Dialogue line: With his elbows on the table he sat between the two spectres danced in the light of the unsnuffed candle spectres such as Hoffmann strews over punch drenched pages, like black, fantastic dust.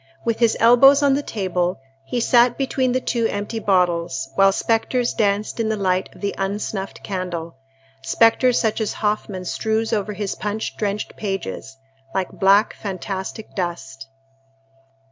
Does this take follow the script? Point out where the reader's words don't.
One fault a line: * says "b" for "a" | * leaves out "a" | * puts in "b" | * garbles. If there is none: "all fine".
* puts in "empty bottles while"
* puts in "his"